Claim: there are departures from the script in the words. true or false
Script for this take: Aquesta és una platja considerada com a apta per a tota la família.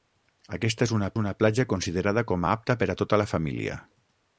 true